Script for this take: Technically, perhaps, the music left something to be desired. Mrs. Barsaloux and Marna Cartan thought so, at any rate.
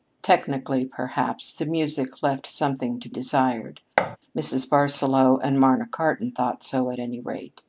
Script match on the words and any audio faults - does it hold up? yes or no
no